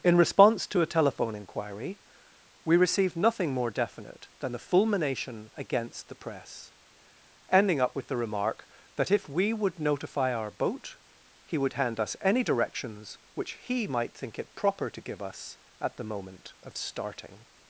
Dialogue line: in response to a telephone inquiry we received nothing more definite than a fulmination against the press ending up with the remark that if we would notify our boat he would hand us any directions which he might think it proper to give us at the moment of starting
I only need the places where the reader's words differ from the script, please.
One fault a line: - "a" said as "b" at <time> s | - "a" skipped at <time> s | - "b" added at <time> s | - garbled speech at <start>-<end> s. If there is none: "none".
- "a" said as "the" at 4.5 s